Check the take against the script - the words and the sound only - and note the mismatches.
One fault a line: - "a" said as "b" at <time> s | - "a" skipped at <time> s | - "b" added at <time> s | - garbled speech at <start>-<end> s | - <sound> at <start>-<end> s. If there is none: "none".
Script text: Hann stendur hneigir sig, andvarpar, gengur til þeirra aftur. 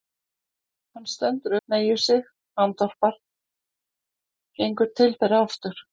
none